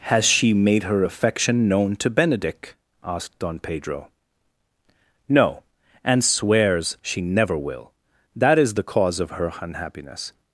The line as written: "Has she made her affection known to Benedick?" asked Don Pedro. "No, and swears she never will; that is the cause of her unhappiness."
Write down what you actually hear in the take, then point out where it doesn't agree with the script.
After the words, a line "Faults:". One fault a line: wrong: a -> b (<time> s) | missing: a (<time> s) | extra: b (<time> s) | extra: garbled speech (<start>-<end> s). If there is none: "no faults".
"Has she made her affection known to Benedick?" asked Don Pedro. "No, and swears she never will; that is the cause of her unhappiness."
Faults:
no faults